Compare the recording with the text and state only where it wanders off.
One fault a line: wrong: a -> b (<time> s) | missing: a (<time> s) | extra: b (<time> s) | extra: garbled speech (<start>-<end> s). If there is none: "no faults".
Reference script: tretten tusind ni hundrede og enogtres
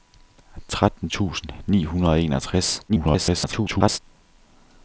extra: garbled speech (2.9-4.0 s)